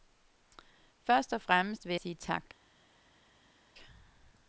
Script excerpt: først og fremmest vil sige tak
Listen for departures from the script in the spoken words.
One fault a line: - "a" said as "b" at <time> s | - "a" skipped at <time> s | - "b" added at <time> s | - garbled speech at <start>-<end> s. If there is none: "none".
none